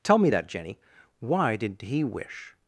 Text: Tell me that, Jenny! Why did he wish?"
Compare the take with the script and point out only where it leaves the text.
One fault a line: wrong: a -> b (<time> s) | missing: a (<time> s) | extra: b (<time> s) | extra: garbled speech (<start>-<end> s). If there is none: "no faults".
no faults